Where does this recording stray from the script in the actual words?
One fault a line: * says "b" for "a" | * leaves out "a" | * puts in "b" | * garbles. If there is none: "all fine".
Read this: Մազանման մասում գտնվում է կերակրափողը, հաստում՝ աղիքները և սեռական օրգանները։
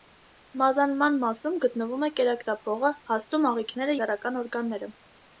* leaves out "և"